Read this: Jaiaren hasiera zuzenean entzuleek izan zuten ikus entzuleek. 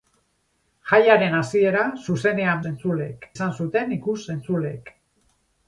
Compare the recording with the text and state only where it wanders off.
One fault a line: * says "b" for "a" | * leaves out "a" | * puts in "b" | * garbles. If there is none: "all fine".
all fine